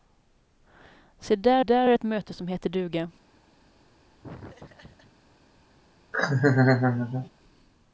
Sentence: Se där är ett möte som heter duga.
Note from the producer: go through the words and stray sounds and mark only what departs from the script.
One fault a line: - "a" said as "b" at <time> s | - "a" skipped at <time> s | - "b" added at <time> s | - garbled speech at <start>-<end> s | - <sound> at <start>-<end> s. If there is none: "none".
- "där" added at 1.6 s
- laugh at 4.2-5.1 s
- laugh at 6.1-7.3 s